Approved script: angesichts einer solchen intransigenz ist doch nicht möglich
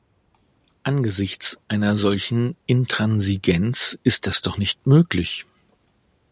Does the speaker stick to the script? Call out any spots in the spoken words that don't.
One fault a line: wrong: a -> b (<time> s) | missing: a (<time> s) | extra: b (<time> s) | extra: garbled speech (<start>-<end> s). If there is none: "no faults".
extra: das (4.3 s)